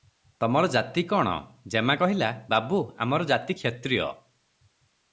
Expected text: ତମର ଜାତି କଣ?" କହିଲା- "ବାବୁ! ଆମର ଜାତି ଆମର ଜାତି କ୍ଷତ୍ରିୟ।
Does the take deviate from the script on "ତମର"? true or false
false